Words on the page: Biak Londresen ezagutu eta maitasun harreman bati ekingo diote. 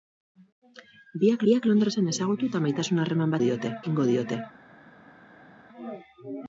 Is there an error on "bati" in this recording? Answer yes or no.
yes